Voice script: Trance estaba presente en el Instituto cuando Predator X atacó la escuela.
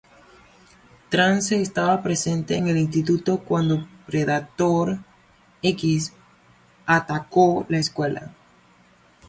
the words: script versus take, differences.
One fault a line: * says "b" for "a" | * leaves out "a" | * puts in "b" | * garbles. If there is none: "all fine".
all fine